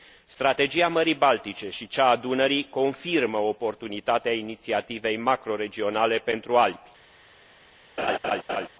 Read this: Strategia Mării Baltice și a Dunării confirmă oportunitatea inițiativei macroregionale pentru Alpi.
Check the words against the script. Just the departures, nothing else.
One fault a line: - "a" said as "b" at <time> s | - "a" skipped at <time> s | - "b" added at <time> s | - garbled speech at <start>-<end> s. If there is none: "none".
- "cea" added at 1.9 s